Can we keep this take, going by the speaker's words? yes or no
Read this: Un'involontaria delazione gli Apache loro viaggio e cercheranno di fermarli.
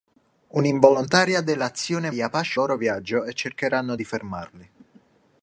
yes